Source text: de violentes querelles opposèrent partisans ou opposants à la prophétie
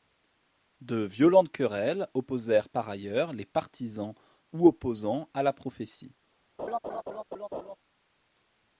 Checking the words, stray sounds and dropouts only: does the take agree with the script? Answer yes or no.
no